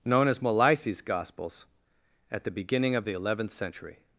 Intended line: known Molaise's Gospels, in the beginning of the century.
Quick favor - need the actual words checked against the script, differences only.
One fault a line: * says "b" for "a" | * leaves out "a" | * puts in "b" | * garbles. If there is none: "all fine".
* puts in "as"
* says "at" for "in"
* puts in "eleventh"